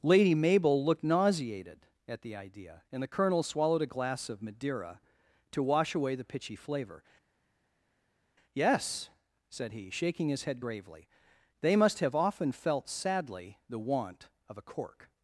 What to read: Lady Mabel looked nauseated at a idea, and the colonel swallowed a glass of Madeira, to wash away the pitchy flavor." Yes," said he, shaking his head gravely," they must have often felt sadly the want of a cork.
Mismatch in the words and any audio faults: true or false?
true